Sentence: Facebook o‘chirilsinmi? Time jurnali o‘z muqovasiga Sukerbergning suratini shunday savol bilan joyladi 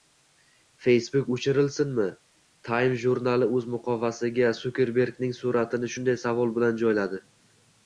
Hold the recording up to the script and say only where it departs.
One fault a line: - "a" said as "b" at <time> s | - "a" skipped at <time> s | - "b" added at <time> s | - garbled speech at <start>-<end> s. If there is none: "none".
none